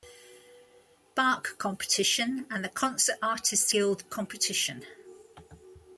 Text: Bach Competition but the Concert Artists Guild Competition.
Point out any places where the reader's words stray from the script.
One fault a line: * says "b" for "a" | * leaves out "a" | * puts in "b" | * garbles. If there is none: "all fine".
* says "and" for "but"